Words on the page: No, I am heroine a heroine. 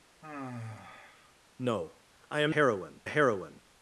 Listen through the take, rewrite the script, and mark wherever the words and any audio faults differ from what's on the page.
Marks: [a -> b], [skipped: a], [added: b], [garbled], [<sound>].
[sigh] No, I am heroine a heroine.